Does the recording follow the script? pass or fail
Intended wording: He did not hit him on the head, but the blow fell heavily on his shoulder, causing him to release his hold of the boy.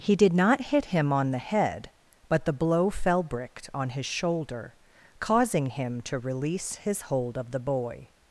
fail